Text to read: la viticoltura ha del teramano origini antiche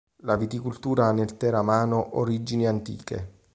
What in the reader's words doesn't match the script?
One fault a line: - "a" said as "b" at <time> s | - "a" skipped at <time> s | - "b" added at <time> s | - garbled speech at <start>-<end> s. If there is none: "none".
- "del" said as "nel" at 1.1 s